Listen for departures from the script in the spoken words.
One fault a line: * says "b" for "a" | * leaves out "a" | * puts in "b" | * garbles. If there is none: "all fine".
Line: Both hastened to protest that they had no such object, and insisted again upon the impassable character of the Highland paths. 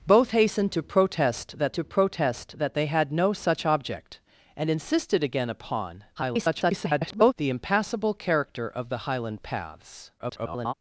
* puts in "to protest that"
* garbles
* garbles